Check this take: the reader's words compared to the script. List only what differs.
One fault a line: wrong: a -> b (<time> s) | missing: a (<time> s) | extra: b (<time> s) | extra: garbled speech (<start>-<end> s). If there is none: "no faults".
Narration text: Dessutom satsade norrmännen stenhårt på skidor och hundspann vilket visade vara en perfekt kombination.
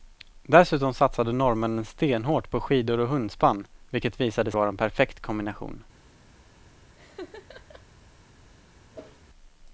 no faults